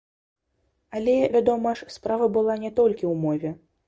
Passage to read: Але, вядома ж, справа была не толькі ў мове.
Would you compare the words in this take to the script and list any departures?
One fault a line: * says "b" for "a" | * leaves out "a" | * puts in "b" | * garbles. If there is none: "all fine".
all fine